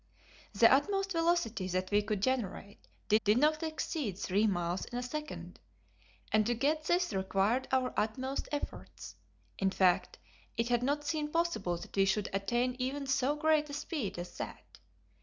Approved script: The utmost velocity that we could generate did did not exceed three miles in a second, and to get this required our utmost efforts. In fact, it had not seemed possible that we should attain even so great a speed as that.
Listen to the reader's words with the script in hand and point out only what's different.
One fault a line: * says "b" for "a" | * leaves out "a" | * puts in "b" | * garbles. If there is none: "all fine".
all fine